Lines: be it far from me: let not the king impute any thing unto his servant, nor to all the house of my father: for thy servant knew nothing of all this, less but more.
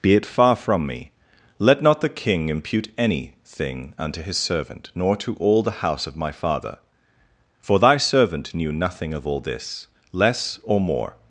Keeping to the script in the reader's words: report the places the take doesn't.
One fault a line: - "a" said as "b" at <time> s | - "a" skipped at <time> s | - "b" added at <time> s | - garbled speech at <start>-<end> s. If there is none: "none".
- "but" said as "or" at 10.6 s